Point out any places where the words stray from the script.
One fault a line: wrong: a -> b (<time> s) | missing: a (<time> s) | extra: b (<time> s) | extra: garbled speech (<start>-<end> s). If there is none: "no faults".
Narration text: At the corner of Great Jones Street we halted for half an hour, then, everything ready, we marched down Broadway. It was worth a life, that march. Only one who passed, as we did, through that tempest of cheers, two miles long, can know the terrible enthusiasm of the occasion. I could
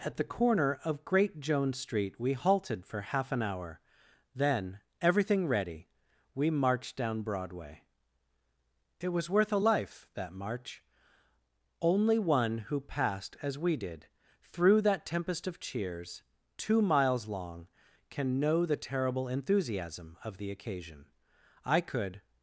no faults